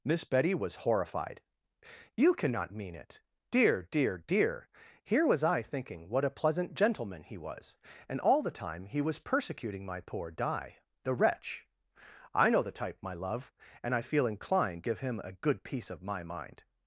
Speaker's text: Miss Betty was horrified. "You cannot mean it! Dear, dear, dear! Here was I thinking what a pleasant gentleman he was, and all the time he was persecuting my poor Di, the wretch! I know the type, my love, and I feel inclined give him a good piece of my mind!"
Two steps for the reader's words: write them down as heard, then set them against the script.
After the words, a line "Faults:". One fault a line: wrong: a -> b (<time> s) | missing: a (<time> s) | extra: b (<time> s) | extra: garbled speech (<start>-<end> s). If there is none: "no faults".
Miss Betty was horrified. "You cannot mean it! Dear, dear, dear! Here was I thinking what a pleasant gentleman he was, and all the time he was persecuting my poor Di, the wretch! I know the type, my love, and I feel inclined give him a good piece of my mind!"
Faults:
no faults